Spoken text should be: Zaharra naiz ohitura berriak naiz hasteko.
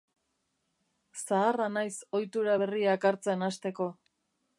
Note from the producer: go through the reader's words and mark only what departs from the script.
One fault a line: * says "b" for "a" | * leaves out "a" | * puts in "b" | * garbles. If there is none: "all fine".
* says "hartzen" for "naiz"